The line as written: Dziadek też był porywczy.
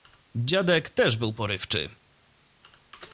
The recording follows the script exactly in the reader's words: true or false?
true